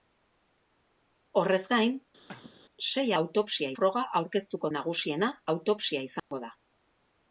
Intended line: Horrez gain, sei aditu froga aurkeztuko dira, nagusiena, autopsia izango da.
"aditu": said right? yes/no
no